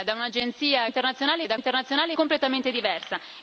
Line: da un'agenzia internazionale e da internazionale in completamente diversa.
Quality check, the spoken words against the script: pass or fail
pass